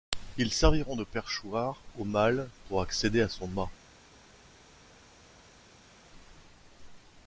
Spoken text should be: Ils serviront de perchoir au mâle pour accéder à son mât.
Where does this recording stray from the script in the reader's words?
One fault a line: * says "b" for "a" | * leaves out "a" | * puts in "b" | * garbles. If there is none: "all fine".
all fine